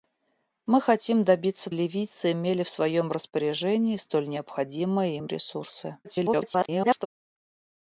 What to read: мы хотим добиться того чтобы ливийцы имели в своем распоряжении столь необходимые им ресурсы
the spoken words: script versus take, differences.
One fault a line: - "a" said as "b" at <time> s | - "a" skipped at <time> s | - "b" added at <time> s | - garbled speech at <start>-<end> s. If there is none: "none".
- "того чтобы" skipped at 1.7 s
- garbled speech at 6.0-7.1 s